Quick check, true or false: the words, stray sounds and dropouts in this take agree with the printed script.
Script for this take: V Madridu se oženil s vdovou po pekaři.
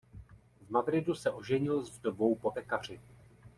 true